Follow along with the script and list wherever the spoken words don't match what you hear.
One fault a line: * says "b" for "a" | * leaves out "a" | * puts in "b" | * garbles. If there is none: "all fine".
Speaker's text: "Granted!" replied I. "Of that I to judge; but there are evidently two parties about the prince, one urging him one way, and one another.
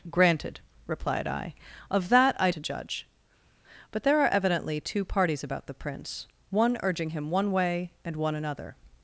all fine